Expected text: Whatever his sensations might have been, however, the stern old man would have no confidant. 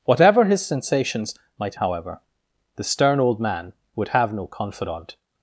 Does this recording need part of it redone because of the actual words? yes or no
yes